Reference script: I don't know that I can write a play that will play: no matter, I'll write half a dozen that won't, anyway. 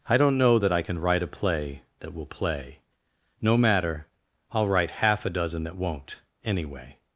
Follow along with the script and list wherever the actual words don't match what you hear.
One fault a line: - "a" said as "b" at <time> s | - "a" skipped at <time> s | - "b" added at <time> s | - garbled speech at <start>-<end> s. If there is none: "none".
none